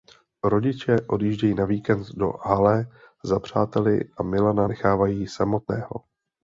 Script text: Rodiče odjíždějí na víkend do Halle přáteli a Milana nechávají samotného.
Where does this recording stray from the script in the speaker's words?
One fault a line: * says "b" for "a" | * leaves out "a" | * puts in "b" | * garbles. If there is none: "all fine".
* puts in "za"